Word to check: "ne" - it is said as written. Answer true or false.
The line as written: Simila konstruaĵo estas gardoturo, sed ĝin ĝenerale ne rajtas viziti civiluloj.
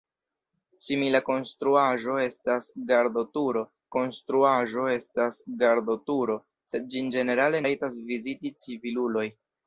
false